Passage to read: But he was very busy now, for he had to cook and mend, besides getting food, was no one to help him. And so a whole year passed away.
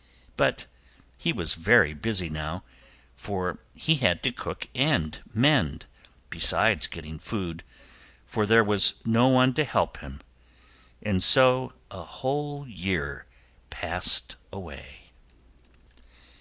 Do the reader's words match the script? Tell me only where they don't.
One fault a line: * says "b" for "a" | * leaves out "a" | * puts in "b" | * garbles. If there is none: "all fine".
* puts in "for there"